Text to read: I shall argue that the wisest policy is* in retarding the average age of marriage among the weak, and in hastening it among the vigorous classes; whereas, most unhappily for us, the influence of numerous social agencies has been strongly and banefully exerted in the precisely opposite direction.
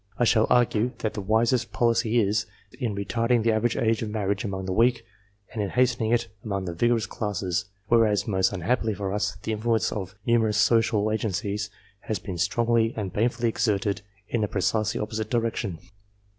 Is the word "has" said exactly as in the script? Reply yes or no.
yes